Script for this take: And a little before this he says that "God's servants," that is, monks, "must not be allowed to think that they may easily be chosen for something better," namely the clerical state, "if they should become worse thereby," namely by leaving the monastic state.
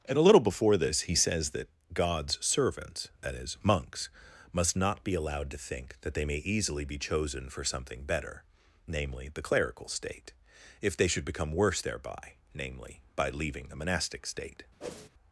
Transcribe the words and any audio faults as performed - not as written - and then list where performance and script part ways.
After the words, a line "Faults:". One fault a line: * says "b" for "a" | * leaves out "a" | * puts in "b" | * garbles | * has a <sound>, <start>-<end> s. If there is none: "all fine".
And a little before this he says that "God's servants," that is, monks, "must not be allowed to think that they may easily be chosen for something better," namely the clerical state, "if they should become worse thereby," namely by leaving the monastic state.
Faults:
* has a whoosh, 14.8-15.1 s